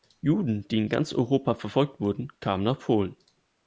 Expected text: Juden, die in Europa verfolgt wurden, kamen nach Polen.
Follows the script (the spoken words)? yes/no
no